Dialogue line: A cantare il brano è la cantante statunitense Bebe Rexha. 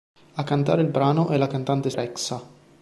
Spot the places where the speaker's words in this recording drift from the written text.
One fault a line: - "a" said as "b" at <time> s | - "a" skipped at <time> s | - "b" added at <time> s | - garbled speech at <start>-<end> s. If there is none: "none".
- "statunitense Bebe" skipped at 1.9 s